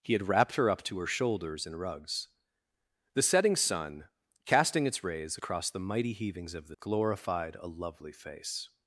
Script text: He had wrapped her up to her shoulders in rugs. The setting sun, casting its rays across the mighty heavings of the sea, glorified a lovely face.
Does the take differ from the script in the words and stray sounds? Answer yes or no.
yes